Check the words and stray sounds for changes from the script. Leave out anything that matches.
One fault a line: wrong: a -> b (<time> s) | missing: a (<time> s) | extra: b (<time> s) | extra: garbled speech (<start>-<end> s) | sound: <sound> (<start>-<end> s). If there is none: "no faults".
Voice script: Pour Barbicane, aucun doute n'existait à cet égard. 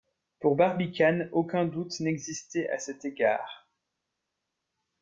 no faults